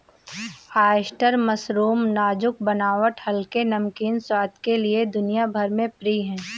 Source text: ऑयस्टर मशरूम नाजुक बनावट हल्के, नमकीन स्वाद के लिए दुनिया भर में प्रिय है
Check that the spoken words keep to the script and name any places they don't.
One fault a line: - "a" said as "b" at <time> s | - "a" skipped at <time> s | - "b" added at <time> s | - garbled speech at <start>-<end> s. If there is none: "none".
none